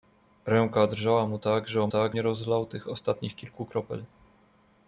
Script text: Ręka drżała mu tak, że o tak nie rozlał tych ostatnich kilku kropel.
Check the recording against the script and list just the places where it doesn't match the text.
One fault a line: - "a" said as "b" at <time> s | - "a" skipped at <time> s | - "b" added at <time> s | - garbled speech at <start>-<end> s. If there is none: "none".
none